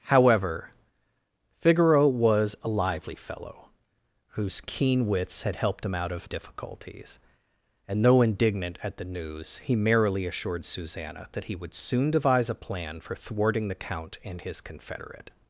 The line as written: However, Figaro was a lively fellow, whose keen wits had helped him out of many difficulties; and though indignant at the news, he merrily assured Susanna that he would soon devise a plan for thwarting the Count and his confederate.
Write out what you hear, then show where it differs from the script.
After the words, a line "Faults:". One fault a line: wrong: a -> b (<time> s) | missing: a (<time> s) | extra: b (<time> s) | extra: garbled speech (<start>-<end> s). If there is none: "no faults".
However, Figaro was a lively fellow, whose keen wits had helped him out of difficulties; and though indignant at the news, he merrily assured Susanna that he would soon devise a plan for thwarting the Count and his confederate.
Faults:
missing: many (6.3 s)